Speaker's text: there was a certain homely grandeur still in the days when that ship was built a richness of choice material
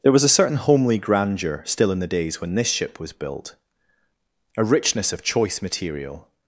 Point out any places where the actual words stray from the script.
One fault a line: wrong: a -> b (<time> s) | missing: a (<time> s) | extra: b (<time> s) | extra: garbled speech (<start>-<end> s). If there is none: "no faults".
wrong: that -> this (2.5 s)